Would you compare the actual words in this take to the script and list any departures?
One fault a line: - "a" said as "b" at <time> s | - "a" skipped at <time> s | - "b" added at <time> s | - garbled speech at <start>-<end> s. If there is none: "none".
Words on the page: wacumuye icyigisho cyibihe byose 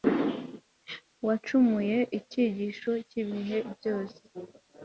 none